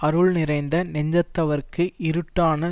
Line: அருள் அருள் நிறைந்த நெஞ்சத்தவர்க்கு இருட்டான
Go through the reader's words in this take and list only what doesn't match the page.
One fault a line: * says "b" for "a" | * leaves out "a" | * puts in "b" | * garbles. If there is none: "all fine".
* leaves out "அருள்"